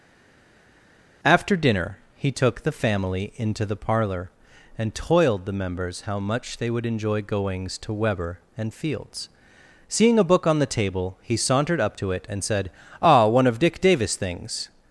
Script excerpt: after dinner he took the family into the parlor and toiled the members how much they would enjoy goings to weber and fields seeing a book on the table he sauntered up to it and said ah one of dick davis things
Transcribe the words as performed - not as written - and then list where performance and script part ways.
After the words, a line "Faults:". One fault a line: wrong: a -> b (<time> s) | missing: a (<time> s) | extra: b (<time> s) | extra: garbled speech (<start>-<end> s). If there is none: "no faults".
after dinner he took the family into the parlor and toiled the members how much they would enjoy goings to weber and fields seeing a book on the table he sauntered up to it and said ah one of dick davis things
Faults:
no faults